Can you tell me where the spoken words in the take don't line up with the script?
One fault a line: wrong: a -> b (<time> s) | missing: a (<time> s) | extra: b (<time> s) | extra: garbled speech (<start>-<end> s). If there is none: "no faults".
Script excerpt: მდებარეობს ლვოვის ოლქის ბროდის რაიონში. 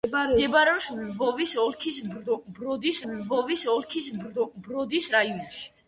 extra: ლვოვის ოლქის ბროდის (3.1 s)